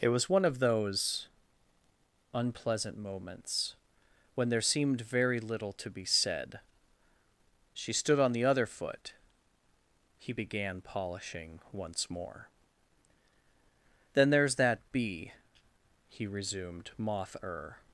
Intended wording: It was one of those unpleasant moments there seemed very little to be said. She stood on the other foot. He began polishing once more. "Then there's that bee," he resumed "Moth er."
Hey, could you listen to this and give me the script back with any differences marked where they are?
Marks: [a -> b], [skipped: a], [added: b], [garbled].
It was one of those unpleasant moments [added: when] there seemed very little to be said. She stood on the other foot. He began polishing once more. "Then there's that bee," he resumed "Moth er."